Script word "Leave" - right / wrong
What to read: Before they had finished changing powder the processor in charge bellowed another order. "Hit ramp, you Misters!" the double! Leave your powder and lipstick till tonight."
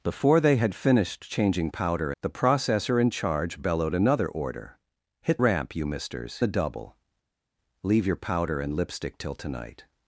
right